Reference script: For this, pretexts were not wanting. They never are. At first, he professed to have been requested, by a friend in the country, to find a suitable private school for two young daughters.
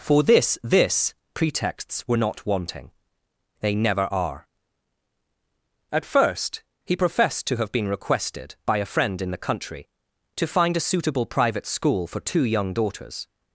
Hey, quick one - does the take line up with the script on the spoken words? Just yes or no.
no